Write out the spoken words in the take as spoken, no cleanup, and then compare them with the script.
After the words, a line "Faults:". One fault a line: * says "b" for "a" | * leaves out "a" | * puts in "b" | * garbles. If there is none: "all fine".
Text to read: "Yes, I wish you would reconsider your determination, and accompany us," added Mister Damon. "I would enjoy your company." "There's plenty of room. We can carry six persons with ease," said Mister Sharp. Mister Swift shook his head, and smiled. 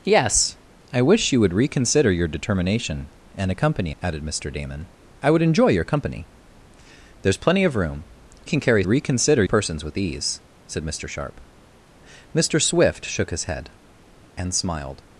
"Yes, I wish you would reconsider your determination, and accompany," added Mister Damon. "I would enjoy your company." "There's plenty of room. Can carry reconsider persons with ease," said Mister Sharp. Mister Swift shook his head, and smiled.
Faults:
* leaves out "us"
* leaves out "We"
* says "reconsider" for "six"